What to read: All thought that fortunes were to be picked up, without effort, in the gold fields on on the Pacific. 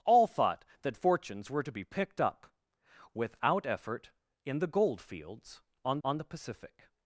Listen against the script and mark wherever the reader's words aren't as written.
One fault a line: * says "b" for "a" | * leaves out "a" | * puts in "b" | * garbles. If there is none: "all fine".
all fine